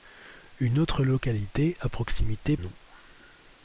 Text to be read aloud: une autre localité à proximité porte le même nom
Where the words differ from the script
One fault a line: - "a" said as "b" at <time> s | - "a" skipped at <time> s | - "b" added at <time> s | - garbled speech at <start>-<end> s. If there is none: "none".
- "porte le même" skipped at 2.6 s